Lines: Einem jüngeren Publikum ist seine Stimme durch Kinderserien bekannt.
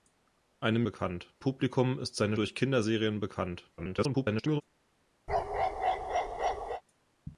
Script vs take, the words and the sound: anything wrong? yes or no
yes